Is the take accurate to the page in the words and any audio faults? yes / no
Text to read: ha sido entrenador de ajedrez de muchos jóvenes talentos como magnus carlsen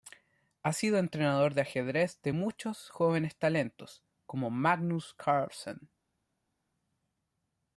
yes